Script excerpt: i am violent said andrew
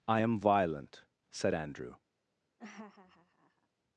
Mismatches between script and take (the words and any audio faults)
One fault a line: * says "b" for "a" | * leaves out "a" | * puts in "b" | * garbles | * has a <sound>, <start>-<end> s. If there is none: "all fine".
* has a laugh, 2.6-3.7 s